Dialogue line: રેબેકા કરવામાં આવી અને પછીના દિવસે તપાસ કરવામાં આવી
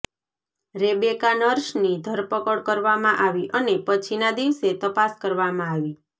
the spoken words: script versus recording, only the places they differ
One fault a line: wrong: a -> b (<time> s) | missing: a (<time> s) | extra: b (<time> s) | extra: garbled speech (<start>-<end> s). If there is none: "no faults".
extra: નર્સની ધરપકડ (1.4 s)